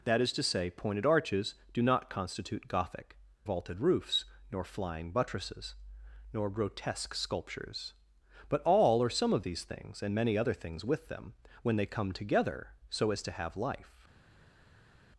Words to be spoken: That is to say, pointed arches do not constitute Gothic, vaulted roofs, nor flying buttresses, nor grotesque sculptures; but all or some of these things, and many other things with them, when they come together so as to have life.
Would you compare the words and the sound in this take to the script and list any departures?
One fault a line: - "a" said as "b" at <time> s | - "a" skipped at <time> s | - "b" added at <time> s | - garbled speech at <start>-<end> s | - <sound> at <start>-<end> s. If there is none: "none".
none